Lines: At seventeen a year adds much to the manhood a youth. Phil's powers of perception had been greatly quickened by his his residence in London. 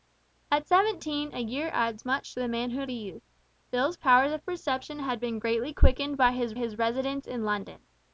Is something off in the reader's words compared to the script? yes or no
no